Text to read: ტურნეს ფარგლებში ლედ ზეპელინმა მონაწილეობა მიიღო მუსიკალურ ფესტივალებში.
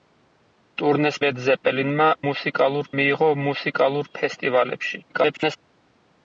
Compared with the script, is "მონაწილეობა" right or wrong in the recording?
wrong